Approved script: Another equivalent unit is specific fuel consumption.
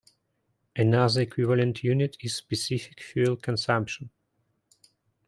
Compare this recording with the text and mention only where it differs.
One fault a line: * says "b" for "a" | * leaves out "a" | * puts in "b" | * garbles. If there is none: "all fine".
all fine